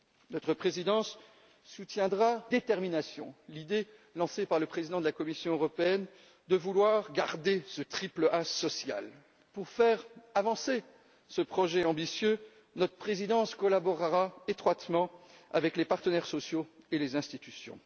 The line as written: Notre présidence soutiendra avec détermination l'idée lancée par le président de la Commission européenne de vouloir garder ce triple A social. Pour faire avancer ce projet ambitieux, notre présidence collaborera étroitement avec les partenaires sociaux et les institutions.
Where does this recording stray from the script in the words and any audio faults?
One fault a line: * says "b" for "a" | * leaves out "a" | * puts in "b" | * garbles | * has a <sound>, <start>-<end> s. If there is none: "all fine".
* leaves out "avec"